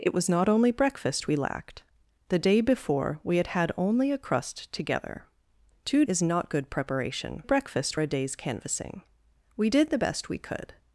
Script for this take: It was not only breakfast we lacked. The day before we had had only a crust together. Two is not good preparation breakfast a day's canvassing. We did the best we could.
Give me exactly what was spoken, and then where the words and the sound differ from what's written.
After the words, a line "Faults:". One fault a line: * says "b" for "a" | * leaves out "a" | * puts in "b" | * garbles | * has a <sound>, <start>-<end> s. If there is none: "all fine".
It was not only breakfast we lacked. The day before we had had only a crust together. Two is not good preparation breakfast a day's canvassing. We did the best we could.
Faults:
all fine